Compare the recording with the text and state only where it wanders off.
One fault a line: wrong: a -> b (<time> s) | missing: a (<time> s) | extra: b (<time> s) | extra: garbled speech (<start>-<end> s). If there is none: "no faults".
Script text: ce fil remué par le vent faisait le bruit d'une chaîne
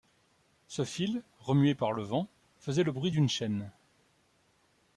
no faults